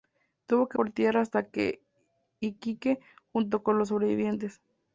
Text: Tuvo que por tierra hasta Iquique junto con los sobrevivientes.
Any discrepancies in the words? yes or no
no